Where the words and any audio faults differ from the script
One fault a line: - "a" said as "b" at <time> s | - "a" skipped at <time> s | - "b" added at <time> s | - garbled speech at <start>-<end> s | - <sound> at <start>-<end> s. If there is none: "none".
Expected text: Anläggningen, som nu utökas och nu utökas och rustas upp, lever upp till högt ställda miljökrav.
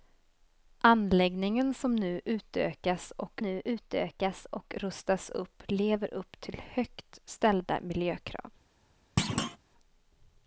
- thud at 9.2-9.6 s